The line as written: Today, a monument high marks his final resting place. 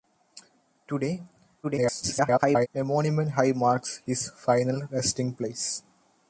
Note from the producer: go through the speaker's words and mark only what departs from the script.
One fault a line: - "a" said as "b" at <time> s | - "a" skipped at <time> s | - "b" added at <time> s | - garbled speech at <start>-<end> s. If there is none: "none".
- garbled speech at 1.6-2.7 s